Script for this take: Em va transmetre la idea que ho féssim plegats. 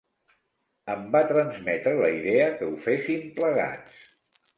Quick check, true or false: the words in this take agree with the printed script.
true